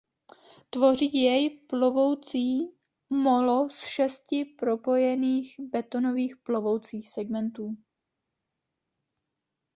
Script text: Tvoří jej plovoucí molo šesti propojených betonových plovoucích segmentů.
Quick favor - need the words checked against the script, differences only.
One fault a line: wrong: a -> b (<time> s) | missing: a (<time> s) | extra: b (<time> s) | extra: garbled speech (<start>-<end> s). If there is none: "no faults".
extra: z (3.7 s)